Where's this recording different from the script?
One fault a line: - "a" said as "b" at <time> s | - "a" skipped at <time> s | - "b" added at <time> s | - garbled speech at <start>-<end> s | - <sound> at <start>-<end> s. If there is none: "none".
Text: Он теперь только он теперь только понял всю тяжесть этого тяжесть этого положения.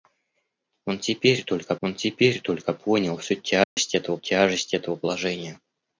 - dropout at 3.6-3.8 s